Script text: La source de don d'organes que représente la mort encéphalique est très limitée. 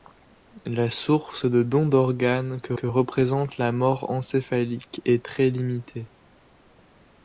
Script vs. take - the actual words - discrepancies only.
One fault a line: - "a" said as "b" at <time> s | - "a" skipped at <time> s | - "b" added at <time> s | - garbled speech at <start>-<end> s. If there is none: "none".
- "que" added at 2.7 s